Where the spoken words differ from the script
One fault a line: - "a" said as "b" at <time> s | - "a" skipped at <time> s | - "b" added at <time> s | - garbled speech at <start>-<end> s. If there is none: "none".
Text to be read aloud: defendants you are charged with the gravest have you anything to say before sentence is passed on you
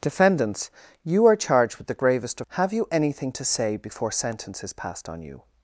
none